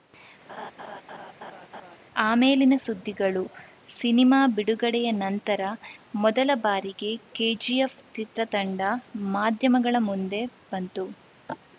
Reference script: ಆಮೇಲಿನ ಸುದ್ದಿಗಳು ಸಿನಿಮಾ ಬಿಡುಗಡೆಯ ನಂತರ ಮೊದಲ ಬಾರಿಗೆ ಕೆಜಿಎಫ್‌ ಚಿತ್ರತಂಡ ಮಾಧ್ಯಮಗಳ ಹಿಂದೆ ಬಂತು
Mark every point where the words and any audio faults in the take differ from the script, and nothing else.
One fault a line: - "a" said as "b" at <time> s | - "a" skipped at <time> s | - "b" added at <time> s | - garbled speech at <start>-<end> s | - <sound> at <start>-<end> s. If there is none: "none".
- laugh at 0.5-2.0 s
- "ಹಿಂದೆ" said as "ಮುಂದೆ" at 10.1 s